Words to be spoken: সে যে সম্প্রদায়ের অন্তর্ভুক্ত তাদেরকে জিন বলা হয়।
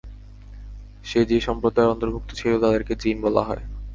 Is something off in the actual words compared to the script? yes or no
yes